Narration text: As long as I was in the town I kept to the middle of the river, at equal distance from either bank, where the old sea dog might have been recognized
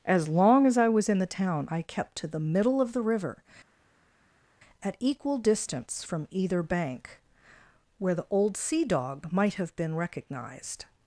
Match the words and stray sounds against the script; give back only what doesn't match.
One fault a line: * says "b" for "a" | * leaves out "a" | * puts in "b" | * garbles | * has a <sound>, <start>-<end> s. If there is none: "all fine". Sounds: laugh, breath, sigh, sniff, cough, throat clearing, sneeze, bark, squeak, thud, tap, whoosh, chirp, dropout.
all fine